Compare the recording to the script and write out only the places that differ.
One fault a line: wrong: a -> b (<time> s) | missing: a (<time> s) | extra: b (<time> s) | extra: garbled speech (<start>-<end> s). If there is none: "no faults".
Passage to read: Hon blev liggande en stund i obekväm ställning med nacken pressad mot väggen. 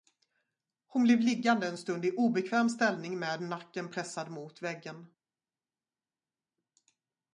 no faults